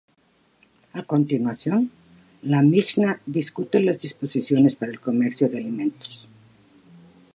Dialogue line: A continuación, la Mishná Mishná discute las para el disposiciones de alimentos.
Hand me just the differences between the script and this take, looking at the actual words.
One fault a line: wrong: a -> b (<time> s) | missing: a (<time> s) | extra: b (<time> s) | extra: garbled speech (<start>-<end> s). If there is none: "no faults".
missing: Mishná (3.2 s)
extra: disposiciones (4.0 s)
wrong: disposiciones -> comercio (5.0 s)